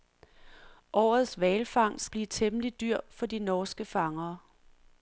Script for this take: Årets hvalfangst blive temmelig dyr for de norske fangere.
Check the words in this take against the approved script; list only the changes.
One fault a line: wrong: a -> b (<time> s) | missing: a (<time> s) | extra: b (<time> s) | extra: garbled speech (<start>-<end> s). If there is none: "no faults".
no faults